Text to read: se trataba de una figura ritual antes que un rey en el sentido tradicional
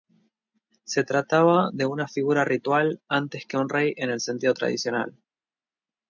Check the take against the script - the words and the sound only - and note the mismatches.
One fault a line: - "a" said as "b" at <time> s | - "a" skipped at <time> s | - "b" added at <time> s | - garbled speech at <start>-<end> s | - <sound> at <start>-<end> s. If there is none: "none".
none